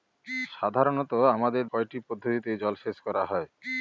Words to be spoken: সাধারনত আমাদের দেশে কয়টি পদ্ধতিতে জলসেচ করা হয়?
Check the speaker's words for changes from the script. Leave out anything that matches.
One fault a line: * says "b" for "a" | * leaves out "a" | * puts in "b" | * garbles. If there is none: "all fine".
* leaves out "দেশে"